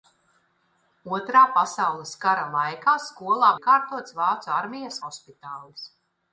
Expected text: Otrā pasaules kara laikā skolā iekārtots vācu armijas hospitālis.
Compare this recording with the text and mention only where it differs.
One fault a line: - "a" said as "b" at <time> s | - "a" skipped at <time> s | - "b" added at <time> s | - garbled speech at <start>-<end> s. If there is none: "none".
none